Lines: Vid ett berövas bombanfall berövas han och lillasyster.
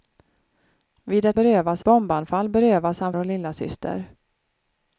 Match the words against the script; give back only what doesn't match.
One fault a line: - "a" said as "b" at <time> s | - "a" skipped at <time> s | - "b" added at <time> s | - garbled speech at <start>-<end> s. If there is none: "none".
none